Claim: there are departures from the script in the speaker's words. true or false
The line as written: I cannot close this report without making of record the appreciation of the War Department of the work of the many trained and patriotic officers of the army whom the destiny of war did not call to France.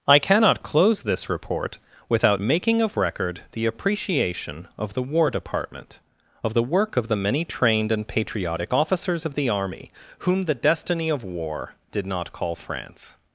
true